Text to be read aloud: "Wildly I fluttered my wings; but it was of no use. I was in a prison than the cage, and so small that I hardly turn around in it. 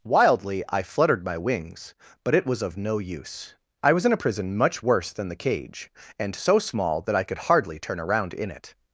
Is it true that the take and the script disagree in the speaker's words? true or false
true